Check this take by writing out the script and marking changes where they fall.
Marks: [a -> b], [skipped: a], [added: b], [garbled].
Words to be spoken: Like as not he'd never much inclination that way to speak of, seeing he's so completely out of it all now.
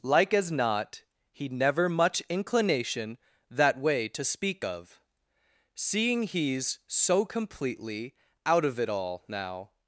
Like as not he'd never much inclination that way to speak of, seeing he's so completely out of it all now.